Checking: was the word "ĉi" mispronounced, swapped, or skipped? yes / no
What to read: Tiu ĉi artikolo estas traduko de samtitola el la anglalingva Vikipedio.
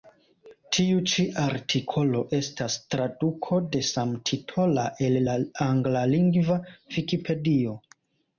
no